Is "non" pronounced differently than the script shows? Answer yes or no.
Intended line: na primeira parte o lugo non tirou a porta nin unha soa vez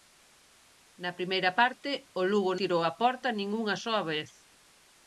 yes